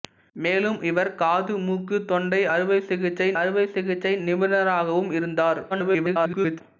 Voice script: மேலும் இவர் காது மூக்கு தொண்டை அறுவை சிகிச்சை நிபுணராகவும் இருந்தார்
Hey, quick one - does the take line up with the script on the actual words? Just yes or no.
no